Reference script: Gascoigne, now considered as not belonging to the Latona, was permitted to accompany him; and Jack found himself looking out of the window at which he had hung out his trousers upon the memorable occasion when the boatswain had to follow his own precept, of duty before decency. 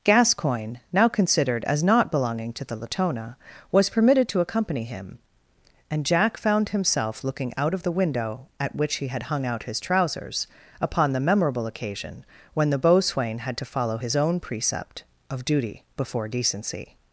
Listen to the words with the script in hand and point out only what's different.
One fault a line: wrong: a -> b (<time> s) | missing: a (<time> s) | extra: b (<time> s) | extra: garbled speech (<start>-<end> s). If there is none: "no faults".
no faults